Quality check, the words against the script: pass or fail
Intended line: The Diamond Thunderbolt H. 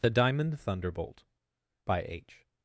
fail